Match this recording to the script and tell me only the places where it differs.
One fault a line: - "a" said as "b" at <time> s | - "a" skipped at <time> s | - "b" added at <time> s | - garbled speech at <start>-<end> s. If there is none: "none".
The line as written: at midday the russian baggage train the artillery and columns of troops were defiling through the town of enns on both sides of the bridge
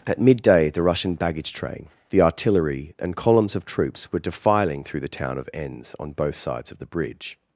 none